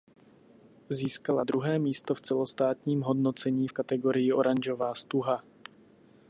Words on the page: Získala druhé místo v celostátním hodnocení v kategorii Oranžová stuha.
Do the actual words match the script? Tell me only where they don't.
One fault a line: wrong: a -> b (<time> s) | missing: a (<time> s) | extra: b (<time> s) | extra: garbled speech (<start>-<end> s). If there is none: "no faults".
no faults